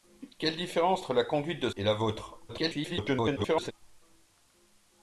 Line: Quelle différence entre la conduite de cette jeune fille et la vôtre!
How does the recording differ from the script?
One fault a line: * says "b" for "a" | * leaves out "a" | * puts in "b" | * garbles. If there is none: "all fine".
* leaves out "cette jeune fille"
* garbles